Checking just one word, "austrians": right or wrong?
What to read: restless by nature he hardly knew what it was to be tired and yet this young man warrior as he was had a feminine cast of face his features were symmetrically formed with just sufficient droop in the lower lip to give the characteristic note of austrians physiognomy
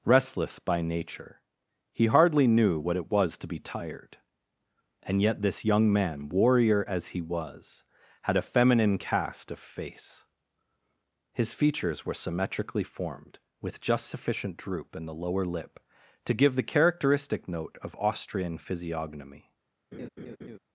wrong